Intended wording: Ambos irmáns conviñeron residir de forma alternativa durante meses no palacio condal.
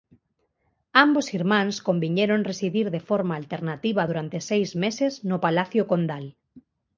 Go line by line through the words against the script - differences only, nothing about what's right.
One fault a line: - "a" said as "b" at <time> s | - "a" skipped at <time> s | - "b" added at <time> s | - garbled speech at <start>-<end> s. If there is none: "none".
- "seis" added at 4.5 s